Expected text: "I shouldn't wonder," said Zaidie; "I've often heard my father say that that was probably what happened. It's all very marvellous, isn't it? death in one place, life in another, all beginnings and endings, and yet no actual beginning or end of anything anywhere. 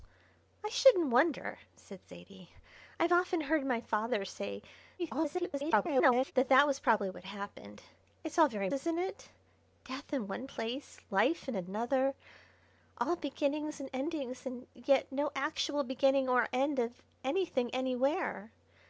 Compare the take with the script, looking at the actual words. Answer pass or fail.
fail